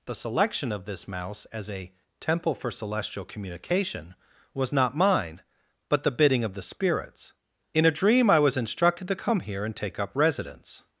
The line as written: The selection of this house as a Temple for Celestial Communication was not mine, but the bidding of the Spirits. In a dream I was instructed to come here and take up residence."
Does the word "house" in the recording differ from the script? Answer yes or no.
yes